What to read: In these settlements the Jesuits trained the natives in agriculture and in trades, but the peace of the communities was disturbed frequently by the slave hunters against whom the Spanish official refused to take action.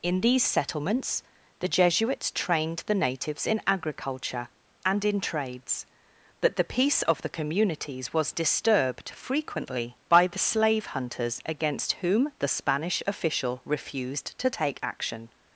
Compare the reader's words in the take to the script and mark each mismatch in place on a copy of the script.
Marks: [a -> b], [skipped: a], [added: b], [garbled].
In these settlements the Jesuits trained the natives in agriculture and in trades, but the peace of the communities was disturbed frequently by the slave hunters against whom the Spanish official refused to take action.